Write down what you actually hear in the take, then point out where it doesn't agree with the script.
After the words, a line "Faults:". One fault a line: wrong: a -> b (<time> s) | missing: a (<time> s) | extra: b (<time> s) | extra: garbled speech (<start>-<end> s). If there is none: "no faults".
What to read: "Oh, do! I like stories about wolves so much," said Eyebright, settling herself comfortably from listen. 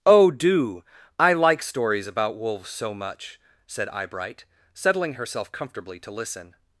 "Oh, do! I like stories about wolves so much," said Eyebright, settling herself comfortably to listen.
Faults:
wrong: from -> to (6.0 s)